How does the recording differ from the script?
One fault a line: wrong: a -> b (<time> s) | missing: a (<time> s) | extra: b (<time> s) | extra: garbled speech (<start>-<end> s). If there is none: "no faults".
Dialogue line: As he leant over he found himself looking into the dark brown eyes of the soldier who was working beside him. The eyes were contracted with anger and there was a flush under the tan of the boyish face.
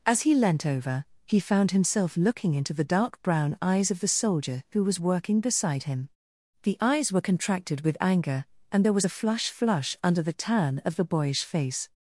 extra: flush (9.5 s)